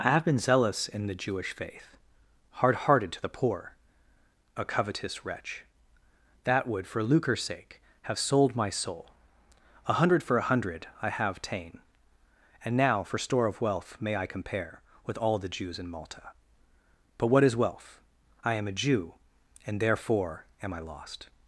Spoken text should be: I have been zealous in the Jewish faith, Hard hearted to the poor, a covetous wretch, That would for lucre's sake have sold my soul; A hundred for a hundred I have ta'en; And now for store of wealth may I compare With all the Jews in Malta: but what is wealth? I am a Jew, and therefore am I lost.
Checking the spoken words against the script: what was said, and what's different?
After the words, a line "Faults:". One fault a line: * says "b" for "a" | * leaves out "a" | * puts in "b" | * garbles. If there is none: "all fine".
I have been zealous in the Jewish faith, Hard hearted to the poor, a covetous wretch, That would for lucre's sake have sold my soul; A hundred for a hundred I have ta'en; And now for store of wealth may I compare With all the Jews in Malta: but what is wealth? I am a Jew, and therefore am I lost.
Faults:
all fine